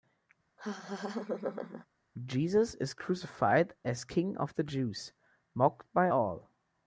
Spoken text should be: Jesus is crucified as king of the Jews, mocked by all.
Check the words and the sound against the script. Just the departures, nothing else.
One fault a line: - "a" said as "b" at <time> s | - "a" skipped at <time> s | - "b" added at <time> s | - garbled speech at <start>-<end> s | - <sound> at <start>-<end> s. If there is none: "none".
- laugh at 0.6-1.9 s